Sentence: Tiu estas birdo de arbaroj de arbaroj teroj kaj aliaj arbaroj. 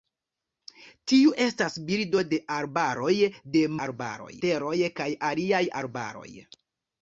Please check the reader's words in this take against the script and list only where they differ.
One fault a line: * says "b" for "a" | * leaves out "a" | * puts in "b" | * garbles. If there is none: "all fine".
all fine